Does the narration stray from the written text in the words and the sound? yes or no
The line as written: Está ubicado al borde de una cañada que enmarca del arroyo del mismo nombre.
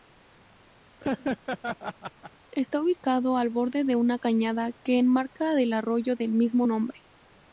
yes